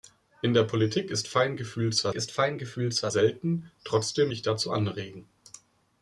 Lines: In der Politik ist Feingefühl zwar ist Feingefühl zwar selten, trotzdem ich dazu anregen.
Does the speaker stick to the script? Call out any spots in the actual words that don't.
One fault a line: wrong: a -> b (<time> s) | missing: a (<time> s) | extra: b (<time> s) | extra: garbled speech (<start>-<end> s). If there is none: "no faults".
no faults